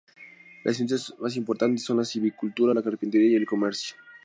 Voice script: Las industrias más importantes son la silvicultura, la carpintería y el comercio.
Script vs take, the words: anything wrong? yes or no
no